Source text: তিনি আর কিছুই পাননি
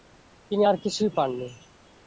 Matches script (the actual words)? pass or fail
pass